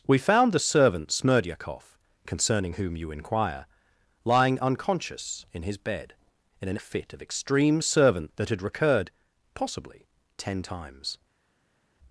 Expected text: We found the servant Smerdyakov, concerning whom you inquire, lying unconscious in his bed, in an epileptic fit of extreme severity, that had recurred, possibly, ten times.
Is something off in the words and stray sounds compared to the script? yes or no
yes